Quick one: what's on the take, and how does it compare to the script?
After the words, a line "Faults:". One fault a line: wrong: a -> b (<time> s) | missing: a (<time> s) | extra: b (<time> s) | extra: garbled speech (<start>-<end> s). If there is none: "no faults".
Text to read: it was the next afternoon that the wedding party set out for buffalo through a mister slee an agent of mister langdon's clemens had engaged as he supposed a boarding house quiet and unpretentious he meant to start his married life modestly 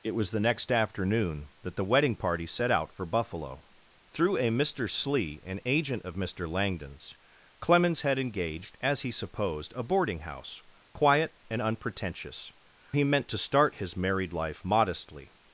it was the next afternoon that the wedding party set out for buffalo through a mister slee an agent of mister langdon's clemens had engaged as he supposed a boarding house quiet and unpretentious he meant to start his married life modestly
Faults:
no faults